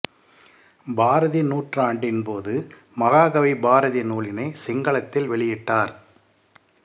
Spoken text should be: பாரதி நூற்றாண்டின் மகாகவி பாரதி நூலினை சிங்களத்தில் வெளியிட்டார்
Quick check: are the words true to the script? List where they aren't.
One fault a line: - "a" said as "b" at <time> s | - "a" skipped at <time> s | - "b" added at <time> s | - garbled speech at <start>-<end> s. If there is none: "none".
- "போது" added at 2.2 s